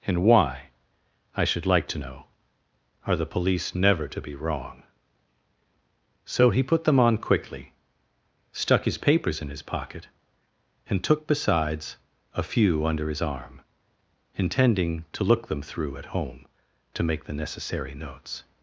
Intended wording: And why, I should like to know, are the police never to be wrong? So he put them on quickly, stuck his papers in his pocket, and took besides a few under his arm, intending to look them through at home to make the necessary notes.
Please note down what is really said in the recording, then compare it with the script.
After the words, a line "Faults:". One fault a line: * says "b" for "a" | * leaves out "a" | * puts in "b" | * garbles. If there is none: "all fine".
And why, I should like to know, are the police never to be wrong? So he put them on quickly, stuck his papers in his pocket, and took besides a few under his arm, intending to look them through at home to make the necessary notes.
Faults:
all fine